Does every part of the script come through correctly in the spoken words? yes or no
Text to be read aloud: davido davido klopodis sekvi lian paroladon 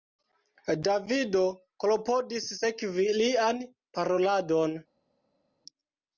no